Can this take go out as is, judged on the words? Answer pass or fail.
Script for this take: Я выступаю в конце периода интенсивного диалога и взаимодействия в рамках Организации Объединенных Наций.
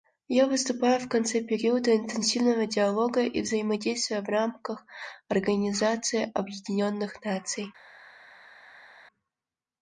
pass